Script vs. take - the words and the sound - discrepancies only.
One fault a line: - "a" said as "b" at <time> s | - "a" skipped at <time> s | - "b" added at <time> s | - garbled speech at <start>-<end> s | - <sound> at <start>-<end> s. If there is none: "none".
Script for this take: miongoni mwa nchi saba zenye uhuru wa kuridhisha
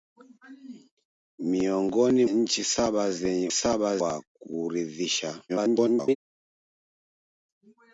- "mwa" skipped at 2.2 s
- "uhuru" said as "saba" at 3.5 s
- garbled speech at 5.5-6.2 s